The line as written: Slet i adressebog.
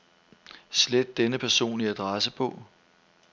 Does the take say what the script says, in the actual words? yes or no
no